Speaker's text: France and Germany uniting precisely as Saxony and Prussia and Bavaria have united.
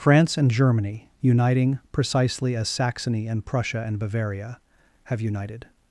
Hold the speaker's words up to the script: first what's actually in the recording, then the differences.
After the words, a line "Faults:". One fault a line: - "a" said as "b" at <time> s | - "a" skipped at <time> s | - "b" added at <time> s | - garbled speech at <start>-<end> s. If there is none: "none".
France and Germany uniting precisely as Saxony and Prussia and Bavaria have united.
Faults:
none